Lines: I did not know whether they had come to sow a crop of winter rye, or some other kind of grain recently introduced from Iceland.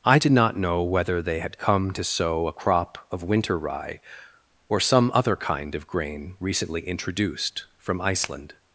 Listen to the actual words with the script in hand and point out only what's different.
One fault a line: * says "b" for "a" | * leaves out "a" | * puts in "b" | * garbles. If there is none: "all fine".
all fine